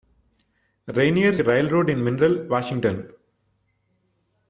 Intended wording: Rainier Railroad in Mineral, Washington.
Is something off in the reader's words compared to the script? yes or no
no